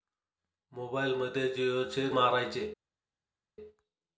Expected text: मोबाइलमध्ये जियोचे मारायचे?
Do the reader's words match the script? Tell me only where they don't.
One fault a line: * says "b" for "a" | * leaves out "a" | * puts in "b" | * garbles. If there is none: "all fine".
all fine